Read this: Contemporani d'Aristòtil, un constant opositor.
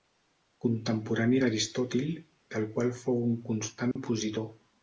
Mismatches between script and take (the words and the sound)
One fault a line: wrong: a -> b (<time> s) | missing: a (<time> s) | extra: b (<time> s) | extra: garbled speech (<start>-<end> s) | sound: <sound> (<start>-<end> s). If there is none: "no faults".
extra: del qual fou (2.6 s)
sound: dropout (3.9-4.0 s)